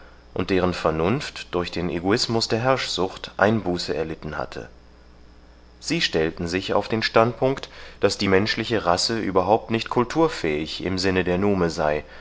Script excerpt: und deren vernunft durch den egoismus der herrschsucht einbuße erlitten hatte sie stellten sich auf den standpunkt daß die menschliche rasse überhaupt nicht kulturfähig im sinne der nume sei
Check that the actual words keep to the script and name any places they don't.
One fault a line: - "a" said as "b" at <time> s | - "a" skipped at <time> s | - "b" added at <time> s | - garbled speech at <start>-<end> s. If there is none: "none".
none